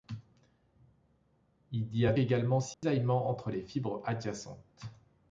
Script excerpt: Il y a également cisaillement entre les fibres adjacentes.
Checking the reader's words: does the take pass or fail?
pass